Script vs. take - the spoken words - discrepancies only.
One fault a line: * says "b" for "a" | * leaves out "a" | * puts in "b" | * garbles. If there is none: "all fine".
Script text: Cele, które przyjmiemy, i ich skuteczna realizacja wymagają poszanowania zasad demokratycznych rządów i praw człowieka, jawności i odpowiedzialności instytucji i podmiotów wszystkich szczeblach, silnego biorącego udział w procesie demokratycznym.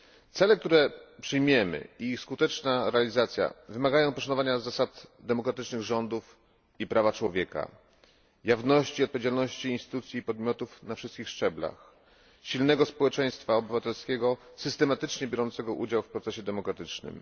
* puts in "na"
* puts in "społeczeństwa obywatelskiego systematycznie"